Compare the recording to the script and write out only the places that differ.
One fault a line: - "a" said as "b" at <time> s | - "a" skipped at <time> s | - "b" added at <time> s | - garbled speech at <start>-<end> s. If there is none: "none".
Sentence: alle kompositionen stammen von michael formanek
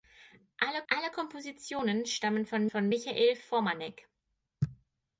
- "alle" added at 0.9 s
- "von" added at 2.7 s